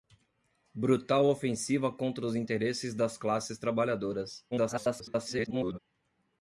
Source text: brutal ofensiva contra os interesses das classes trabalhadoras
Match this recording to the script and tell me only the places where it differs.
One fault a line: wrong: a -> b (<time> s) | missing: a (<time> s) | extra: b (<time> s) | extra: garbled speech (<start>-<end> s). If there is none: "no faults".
extra: garbled speech (4.5-5.8 s)